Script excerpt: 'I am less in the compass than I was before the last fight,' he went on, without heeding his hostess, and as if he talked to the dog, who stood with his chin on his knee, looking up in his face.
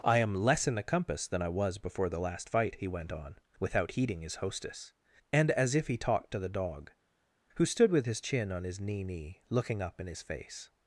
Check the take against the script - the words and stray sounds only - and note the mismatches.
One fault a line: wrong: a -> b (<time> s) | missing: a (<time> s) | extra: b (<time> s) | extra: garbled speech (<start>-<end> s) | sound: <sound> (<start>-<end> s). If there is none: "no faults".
extra: knee (9.0 s)